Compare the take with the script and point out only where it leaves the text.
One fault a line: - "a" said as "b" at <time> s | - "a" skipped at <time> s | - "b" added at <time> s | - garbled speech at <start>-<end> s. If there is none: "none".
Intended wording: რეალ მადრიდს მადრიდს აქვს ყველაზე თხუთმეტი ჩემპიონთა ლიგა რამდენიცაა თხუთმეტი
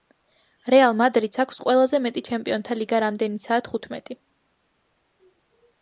- "მადრიდს" skipped at 1.4 s
- "თხუთმეტი" said as "მეტი" at 2.1 s